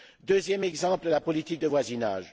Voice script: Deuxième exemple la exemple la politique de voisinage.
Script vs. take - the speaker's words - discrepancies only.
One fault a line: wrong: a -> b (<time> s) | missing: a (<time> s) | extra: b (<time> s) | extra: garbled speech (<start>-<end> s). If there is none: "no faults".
missing: exemple la (1.2 s)